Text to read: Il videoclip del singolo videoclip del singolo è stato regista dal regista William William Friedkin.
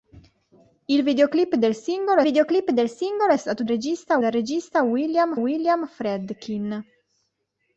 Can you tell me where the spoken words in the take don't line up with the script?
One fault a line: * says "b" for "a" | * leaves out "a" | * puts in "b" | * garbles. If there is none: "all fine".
all fine